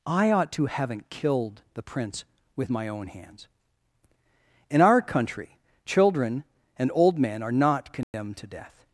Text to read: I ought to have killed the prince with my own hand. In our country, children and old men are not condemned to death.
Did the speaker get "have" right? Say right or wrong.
wrong